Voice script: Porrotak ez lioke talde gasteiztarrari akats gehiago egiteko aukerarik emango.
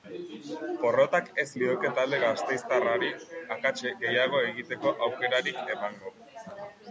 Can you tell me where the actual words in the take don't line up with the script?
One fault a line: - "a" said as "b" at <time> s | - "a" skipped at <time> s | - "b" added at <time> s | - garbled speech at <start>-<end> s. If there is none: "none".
none